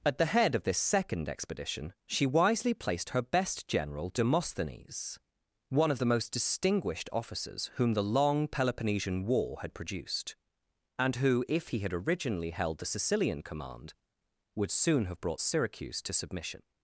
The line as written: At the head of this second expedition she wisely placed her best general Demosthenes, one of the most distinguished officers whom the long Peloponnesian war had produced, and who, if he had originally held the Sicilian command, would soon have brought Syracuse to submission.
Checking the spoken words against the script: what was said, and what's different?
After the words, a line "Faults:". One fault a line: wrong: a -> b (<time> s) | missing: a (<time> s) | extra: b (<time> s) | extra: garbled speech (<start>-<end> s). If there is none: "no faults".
At the head of this second expedition she wisely placed her best general Demosthenes, one of the most distinguished officers whom the long Peloponnesian war had produced, and who, if he had originally held the Sicilian command, would soon have brought Syracuse to submission.
Faults:
no faults